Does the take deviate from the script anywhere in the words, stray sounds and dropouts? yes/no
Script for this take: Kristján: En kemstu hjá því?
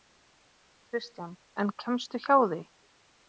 no